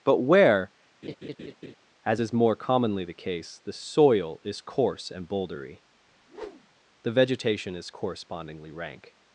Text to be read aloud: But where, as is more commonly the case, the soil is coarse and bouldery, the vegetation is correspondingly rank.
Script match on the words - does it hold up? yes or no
yes